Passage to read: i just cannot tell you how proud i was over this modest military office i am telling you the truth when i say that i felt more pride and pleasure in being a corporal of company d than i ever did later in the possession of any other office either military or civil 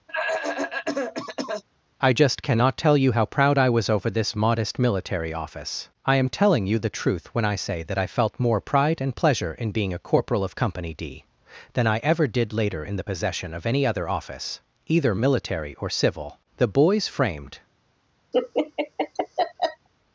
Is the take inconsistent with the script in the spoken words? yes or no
yes